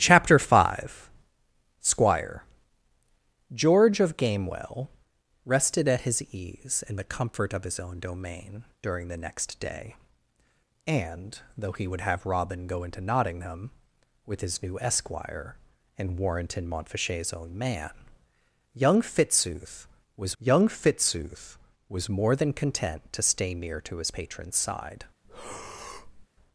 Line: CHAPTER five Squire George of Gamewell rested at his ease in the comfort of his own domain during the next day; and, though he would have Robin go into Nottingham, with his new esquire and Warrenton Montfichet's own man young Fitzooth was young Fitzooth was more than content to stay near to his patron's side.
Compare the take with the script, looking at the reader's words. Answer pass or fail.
pass